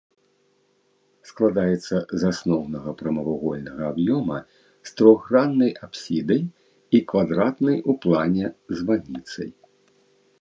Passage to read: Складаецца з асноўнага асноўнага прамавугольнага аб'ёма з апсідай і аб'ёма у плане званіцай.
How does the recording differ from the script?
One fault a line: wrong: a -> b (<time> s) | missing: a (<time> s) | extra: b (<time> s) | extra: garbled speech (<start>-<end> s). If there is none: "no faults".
missing: асноўнага (2.9 s)
extra: трохграннай (5.0 s)
wrong: аб'ёма -> квадратнай (7.1 s)